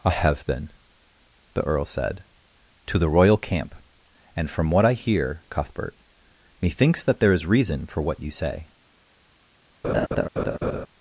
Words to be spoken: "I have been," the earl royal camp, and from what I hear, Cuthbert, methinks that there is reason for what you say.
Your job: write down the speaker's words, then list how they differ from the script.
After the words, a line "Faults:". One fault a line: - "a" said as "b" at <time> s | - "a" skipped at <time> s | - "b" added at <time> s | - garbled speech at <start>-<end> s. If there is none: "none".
"I have been," the earl said, "to the royal camp, and from what I hear, Cuthbert, methinks that there is reason for what you say.
Faults:
- "said to the" added at 1.9 s